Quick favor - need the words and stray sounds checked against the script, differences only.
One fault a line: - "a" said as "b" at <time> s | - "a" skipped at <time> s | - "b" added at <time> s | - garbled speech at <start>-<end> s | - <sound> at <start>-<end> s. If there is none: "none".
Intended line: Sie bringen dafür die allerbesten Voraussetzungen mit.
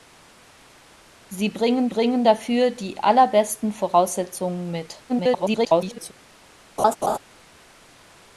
- "bringen" added at 1.8 s
- garbled speech at 5.1-6.1 s
- laugh at 6.8-7.2 s